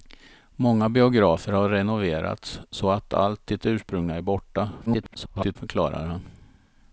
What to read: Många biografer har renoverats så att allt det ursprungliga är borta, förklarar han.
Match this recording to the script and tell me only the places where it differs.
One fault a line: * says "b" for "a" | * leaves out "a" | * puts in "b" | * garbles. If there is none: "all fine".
* garbles